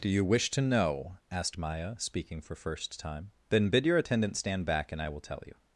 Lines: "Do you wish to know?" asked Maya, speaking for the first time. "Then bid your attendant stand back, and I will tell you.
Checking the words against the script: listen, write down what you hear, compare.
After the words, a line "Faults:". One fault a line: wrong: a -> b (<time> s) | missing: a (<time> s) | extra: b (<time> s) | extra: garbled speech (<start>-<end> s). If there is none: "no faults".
"Do you wish to know?" asked Maya, speaking for first time. "Then bid your attendant stand back, and I will tell you.
Faults:
missing: the (2.5 s)